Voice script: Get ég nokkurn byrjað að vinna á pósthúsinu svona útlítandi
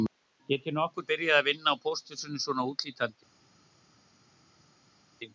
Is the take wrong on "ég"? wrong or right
right